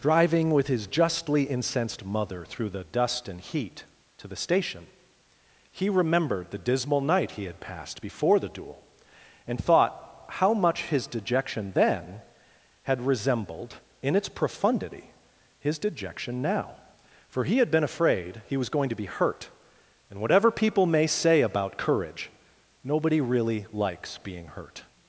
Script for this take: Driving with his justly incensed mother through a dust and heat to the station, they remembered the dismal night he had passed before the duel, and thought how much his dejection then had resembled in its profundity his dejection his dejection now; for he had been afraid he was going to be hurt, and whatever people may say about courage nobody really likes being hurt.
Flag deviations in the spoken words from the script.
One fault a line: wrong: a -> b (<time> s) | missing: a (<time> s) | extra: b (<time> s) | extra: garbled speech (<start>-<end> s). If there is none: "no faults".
wrong: a -> the (2.7 s)
wrong: they -> he (5.7 s)
missing: his dejection (16.4 s)